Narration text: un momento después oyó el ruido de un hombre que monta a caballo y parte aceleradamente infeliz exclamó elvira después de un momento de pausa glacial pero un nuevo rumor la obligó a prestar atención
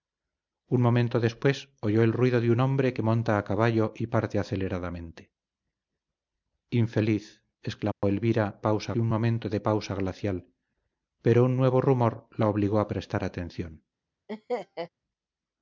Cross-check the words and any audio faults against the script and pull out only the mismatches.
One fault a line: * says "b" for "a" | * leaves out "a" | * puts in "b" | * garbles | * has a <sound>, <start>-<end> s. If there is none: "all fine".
* has a dropout, 7.9-8.0 s
* says "pausa" for "después"
* has a laugh, 14.3-14.9 s